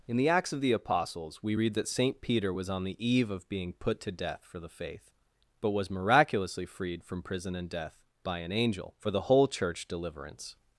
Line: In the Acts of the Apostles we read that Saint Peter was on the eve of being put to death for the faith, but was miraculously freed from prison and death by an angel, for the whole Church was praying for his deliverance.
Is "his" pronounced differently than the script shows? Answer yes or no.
yes